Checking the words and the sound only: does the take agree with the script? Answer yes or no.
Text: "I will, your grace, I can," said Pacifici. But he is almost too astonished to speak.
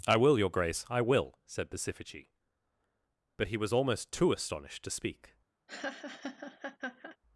no